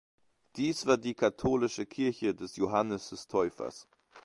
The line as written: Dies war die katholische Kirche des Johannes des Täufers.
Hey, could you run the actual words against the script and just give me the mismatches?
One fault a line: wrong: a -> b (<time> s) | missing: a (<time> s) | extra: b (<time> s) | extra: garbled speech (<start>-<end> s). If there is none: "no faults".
no faults